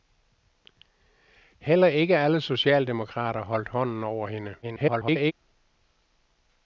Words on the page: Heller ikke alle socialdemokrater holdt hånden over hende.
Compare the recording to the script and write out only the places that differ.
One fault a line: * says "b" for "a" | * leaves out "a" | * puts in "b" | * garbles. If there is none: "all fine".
* garbles